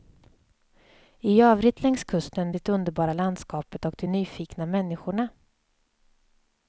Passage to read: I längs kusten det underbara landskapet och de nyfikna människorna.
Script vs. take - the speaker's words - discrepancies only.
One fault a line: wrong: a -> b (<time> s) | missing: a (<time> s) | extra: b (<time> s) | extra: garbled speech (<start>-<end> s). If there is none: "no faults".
extra: övrigt (1.4 s)